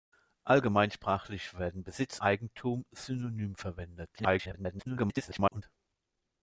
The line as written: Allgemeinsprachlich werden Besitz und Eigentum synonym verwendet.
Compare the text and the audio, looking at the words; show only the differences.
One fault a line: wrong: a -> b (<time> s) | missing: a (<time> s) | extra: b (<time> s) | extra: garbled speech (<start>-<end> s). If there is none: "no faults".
missing: und (2.2 s)
extra: garbled speech (4.2-5.6 s)